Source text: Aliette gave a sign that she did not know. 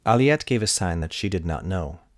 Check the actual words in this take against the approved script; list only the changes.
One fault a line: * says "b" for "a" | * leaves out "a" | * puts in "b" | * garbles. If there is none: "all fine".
all fine